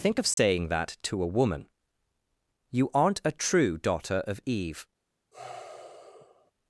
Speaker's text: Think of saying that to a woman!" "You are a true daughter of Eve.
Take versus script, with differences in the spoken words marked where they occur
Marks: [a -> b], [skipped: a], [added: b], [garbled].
Think of saying that to a woman!" "You [are -> aren't] a true daughter of Eve.